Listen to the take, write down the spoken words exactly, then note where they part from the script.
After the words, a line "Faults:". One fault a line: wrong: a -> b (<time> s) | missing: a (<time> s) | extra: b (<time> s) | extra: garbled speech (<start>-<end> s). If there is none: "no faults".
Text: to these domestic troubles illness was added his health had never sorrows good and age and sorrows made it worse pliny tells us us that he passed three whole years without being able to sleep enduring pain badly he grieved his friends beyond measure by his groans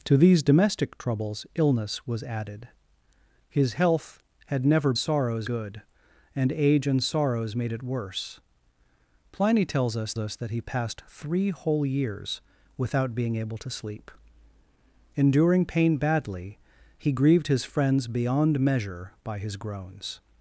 to these domestic troubles illness was added his health had never sorrows good and age and sorrows made it worse pliny tells us us that he passed three whole years without being able to sleep enduring pain badly he grieved his friends beyond measure by his groans
Faults:
no faults